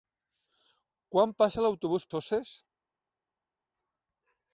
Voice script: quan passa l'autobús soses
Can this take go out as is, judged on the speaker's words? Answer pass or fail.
pass